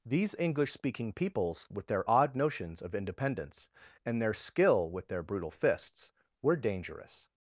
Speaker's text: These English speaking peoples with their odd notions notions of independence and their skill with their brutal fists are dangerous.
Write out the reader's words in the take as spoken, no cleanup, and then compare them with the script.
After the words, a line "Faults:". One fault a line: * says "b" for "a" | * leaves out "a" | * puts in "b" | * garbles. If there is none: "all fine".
These English speaking peoples with their odd notions of independence and their skill with their brutal fists were dangerous.
Faults:
* leaves out "notions"
* says "were" for "are"